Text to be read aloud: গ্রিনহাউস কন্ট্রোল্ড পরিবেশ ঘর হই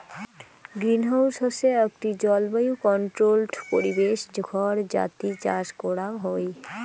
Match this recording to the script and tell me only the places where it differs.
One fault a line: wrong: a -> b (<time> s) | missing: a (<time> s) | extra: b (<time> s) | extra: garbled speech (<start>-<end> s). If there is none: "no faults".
extra: হসে আকটি জলবায়ু (1.4 s)
extra: যাতি চাষ করাং (4.9 s)